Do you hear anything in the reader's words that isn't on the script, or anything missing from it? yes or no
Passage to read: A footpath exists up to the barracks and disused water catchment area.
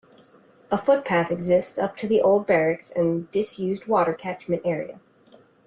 yes